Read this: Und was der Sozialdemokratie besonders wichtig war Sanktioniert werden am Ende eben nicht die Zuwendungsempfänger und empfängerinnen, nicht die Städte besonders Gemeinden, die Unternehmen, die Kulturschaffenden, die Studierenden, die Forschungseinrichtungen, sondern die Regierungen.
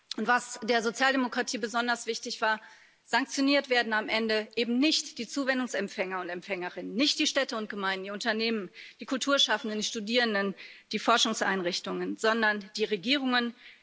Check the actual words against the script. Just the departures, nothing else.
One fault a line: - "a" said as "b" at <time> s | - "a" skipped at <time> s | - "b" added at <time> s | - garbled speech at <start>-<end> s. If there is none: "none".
- "besonders" said as "und" at 7.6 s